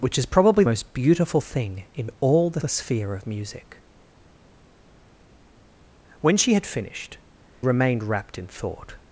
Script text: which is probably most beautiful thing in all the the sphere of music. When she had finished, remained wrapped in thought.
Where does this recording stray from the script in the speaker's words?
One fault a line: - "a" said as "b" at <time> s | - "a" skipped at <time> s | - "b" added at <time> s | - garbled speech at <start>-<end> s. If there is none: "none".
none